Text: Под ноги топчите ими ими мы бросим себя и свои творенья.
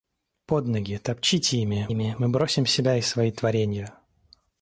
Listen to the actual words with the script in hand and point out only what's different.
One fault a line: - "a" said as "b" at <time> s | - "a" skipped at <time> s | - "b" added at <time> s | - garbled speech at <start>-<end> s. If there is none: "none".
none